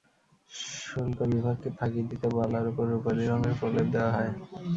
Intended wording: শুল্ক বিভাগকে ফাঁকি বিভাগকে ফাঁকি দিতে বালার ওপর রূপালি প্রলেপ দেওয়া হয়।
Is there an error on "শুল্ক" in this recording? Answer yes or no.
no